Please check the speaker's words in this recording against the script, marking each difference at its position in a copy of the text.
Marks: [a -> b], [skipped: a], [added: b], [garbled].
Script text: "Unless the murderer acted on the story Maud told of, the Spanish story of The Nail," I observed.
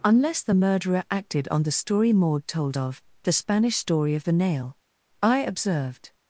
"Unless the murderer acted on the story Maud told of, the Spanish story of The Nail," I observed.